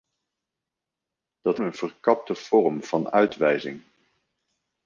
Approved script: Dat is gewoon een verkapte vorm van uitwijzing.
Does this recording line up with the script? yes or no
no